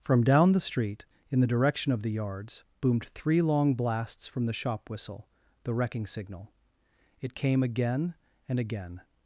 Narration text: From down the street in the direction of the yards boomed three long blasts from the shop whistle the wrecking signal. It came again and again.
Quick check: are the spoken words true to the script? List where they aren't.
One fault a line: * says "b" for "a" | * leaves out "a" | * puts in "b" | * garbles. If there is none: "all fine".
all fine